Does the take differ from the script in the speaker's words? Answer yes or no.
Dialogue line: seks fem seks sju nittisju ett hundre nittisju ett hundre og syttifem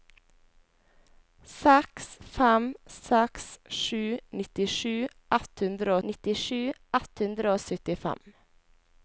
no